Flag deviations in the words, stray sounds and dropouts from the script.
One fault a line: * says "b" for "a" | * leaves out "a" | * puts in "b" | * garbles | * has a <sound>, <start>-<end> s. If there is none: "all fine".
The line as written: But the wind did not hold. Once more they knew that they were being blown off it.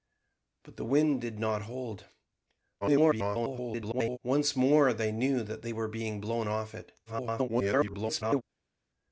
* garbles
* garbles